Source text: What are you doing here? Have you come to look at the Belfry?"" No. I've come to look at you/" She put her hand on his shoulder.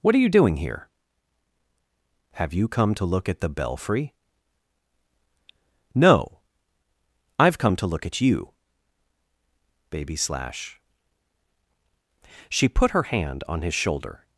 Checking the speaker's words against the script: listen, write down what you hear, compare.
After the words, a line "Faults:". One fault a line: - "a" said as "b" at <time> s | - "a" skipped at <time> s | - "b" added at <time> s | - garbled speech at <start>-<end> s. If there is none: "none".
What are you doing here? Have you come to look at the Belfry?"" No. I've come to look at you/" baby slash She put her hand on his shoulder.
Faults:
- "baby slash" added at 9.9 s